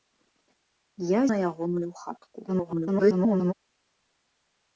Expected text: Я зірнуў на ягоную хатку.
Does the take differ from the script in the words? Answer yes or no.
yes